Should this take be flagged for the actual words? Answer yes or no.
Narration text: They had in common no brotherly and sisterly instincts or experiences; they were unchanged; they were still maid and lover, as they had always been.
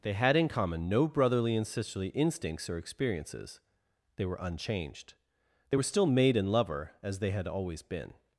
no